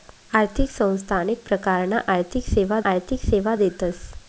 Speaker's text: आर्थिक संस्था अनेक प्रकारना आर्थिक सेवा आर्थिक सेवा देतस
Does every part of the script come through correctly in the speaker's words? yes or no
yes